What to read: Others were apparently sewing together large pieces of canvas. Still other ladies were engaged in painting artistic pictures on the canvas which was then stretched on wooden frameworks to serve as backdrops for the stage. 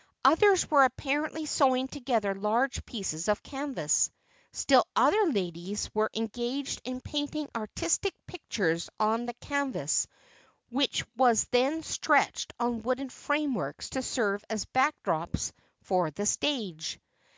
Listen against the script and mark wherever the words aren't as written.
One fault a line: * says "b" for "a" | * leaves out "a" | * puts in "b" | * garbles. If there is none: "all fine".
all fine